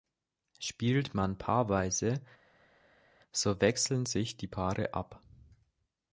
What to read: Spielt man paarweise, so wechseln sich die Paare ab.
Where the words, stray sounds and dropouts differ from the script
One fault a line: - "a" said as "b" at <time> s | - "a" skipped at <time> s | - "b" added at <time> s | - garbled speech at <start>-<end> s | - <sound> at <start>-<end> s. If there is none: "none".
none